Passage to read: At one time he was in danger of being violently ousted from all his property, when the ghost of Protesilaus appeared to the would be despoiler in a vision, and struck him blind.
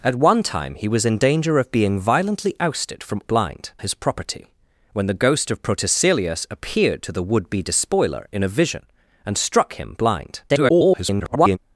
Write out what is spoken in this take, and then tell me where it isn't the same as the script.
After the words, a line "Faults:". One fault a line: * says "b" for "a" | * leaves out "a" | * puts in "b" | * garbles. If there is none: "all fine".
At one time he was in danger of being violently ousted from blind his property, when the ghost of Protesilaus appeared to the would be despoiler in a vision, and struck him blind. [garbled]
Faults:
* says "blind" for "all"
* garbles